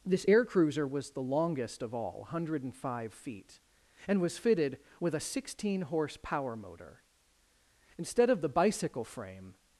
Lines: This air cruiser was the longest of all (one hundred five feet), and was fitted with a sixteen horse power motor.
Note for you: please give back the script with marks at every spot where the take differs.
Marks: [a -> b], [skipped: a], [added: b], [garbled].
This air cruiser was the longest of all (one hundred five feet), and was fitted with a sixteen horse power motor. [added: Instead of the bicycle frame]